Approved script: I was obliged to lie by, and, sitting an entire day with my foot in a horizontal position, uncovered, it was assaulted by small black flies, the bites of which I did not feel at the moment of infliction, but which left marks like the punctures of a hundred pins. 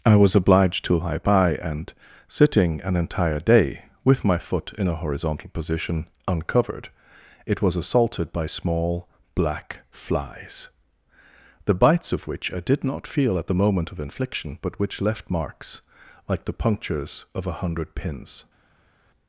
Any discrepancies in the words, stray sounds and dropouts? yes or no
no